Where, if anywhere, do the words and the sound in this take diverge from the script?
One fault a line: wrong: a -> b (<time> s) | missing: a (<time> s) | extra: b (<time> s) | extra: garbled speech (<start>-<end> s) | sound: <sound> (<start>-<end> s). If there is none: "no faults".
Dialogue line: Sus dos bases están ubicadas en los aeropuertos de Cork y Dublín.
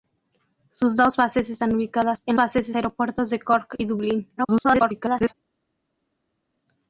wrong: los -> bases (2.3 s)
extra: garbled speech (4.4-5.3 s)